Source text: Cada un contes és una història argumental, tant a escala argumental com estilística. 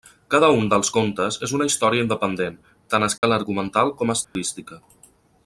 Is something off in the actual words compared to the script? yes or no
yes